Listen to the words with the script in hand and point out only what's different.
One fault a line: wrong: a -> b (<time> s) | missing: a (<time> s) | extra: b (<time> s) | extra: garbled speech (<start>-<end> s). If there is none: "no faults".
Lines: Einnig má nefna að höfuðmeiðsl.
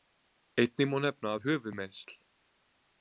no faults